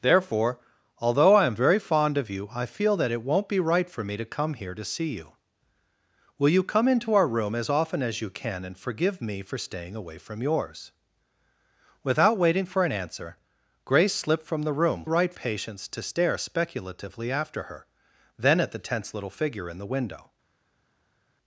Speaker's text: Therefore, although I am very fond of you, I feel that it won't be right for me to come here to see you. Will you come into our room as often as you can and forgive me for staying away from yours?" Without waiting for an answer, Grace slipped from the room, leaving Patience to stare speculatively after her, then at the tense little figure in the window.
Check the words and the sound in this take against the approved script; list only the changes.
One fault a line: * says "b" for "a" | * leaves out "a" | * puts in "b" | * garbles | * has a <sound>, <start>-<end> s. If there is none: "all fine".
* says "right" for "leaving"